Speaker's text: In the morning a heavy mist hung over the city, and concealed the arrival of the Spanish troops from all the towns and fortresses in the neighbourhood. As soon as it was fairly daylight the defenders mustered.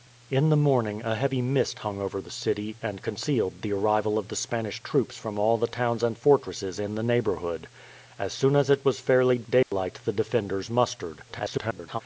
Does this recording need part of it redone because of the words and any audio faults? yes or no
yes